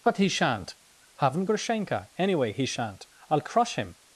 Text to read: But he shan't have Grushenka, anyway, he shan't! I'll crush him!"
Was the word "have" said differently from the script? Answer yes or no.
yes